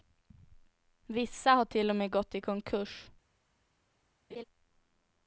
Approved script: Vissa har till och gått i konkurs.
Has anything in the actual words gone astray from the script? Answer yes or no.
yes